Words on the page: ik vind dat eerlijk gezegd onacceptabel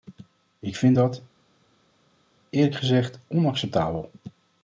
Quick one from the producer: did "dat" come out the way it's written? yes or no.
yes